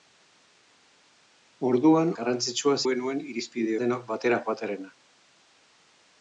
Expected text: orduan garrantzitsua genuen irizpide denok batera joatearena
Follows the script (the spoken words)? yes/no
yes